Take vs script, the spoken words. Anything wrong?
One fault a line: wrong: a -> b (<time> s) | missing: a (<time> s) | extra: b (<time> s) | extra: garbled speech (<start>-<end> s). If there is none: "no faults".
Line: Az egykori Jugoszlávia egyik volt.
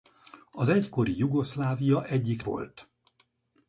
no faults